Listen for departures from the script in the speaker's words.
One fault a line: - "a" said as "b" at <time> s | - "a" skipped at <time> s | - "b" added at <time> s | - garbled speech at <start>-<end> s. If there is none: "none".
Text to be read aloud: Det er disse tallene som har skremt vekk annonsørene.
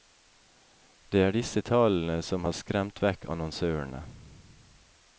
none